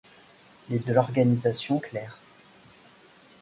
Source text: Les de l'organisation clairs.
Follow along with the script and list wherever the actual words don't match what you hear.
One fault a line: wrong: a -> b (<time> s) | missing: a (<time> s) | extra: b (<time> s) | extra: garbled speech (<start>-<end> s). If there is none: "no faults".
no faults